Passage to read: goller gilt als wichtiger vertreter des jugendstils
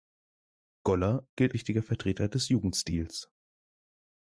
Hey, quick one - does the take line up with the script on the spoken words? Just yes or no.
no